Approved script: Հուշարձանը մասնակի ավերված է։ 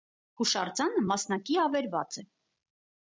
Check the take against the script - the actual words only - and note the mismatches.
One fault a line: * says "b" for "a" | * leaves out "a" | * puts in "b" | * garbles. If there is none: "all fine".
all fine